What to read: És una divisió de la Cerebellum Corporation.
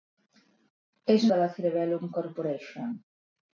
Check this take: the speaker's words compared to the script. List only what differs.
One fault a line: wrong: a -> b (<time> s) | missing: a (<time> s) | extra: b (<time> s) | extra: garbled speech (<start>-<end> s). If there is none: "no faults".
missing: una divisió (1.3 s)